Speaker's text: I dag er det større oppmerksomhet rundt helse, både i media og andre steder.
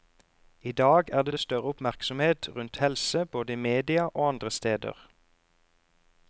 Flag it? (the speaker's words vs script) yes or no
yes